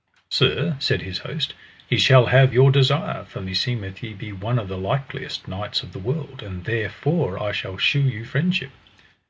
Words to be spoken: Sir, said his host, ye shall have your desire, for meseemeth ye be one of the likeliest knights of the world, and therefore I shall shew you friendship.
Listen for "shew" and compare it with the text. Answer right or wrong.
right